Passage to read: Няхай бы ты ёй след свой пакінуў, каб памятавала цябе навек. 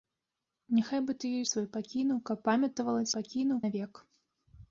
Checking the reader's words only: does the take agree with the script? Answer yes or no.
no